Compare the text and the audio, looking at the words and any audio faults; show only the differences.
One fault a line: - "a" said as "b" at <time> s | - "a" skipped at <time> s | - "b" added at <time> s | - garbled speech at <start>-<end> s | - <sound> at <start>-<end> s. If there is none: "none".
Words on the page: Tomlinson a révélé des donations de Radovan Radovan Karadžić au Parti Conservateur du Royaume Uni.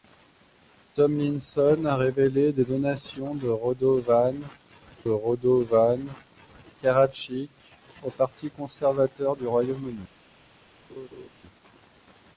- laugh at 10.9-11.3 s